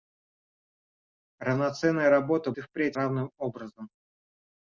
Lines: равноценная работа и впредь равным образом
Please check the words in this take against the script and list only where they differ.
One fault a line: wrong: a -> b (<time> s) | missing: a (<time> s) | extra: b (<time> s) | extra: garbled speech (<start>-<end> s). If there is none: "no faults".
no faults